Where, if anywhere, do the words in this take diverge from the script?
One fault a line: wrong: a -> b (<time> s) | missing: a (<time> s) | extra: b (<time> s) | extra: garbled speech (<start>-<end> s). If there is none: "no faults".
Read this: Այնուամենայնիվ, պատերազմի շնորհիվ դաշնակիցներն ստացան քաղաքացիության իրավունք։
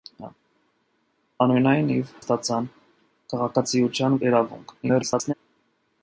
missing: պատերազմի շնորհիվ դաշնակիցներն (2.1 s)
extra: garbled speech (4.8-5.3 s)